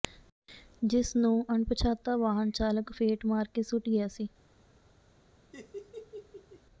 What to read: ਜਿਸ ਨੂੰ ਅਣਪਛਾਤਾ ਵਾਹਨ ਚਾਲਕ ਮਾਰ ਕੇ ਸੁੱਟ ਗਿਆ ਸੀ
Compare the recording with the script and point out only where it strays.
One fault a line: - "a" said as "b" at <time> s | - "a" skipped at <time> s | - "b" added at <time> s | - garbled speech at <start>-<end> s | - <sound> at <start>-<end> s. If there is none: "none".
- "ਫੇਟ" added at 2.9 s
- laugh at 5.5-6.6 s